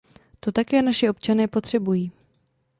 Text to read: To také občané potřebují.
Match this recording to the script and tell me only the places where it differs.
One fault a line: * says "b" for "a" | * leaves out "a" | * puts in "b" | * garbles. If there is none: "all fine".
* puts in "naši"